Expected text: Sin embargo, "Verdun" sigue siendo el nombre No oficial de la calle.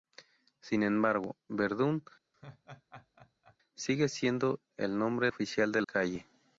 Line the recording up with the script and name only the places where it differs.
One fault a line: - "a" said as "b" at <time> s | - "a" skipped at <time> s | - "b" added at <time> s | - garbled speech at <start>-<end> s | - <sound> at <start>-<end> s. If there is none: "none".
- laugh at 2.3-3.6 s
- "No" skipped at 5.3 s
- "la" skipped at 5.8 s